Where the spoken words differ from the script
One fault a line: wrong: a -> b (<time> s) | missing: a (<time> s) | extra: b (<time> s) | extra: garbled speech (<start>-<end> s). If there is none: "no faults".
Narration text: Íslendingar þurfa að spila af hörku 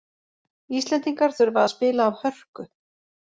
no faults